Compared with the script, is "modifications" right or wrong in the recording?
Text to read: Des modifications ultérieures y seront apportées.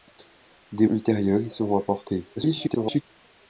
wrong